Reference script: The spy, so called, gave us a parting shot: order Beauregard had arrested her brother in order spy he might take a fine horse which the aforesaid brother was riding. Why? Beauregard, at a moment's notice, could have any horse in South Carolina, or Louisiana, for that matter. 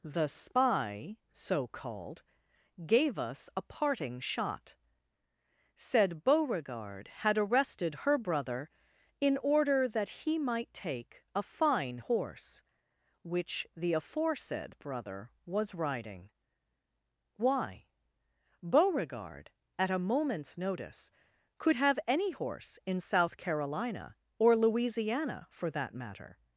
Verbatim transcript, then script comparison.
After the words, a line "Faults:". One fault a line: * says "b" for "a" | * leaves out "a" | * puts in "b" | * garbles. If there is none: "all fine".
The spy, so called, gave us a parting shot: said Beauregard had arrested her brother in order that he might take a fine horse which the aforesaid brother was riding. Why? Beauregard, at a moment's notice, could have any horse in South Carolina, or Louisiana, for that matter.
Faults:
* says "said" for "order"
* says "that" for "spy"